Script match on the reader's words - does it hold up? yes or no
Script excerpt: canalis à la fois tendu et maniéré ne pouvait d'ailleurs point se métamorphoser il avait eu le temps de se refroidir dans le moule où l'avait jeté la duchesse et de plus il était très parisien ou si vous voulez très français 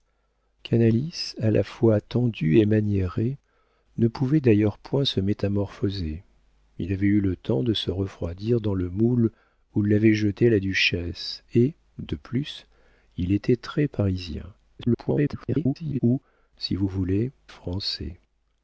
no